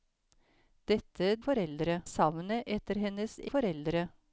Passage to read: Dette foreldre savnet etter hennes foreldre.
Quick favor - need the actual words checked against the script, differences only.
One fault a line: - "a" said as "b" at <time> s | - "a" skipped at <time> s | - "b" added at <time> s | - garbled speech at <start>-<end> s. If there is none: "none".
none